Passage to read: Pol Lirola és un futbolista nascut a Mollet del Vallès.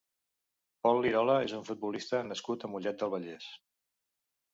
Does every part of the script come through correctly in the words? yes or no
yes